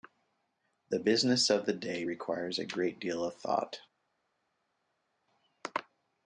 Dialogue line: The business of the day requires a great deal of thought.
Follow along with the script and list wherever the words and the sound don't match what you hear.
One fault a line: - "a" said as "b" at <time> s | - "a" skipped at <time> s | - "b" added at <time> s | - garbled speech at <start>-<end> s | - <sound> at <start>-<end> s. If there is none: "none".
none